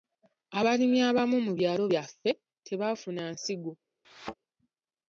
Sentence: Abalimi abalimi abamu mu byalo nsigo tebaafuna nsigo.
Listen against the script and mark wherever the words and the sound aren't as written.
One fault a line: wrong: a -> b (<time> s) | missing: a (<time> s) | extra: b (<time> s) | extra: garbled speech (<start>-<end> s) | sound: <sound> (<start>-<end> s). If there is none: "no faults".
missing: abalimi (1.0 s)
wrong: nsigo -> byaffe (1.9 s)
sound: thud (4.0-4.3 s)